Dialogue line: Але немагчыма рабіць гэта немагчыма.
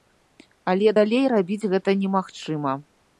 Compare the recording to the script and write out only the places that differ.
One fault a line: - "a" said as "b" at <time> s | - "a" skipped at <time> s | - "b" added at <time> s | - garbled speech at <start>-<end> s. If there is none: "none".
- "немагчыма" said as "далей" at 1.0 s